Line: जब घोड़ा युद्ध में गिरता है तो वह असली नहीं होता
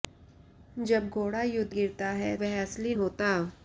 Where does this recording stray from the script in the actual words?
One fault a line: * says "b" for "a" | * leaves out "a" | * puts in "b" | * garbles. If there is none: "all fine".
* leaves out "में"
* leaves out "तो"
* leaves out "नहीं"